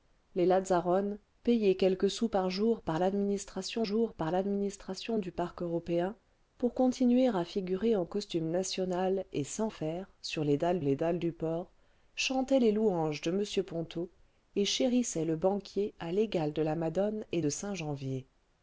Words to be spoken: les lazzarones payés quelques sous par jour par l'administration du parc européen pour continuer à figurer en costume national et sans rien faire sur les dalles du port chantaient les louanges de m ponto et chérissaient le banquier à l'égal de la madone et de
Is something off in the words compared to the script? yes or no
yes